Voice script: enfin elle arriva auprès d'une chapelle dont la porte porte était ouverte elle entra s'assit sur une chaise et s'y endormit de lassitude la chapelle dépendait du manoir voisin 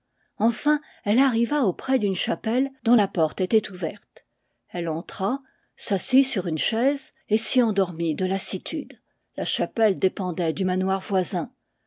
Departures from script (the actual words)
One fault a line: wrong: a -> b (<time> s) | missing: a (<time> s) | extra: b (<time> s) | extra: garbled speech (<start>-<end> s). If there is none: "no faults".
missing: porte (3.4 s)